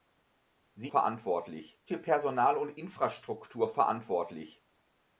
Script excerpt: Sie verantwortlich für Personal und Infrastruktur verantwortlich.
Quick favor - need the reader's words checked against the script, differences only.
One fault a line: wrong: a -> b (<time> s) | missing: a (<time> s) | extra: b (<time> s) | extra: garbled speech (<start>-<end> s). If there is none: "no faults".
no faults